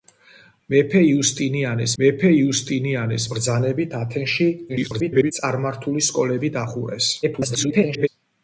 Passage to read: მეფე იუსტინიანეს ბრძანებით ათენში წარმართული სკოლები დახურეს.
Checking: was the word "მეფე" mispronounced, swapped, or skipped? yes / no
no